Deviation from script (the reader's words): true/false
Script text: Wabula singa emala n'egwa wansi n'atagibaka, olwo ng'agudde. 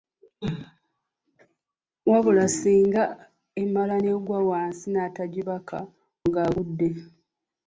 true